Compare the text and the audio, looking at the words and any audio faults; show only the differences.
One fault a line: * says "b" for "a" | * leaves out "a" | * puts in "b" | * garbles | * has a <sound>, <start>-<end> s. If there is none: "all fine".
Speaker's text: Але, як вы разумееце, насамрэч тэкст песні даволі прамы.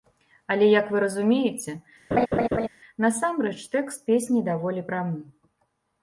* has a laugh, 2.1-2.7 s